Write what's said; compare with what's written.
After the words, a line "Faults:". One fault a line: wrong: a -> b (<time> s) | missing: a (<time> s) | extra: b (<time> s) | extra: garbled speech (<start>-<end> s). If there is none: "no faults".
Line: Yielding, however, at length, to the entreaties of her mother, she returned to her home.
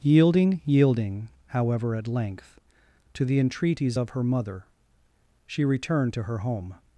Yielding yielding, however, at length, to the entreaties of her mother, she returned to her home.
Faults:
extra: yielding (0.7 s)